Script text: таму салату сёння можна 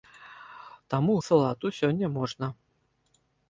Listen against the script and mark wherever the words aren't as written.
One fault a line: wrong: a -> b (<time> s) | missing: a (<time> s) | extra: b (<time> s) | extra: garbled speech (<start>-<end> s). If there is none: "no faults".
no faults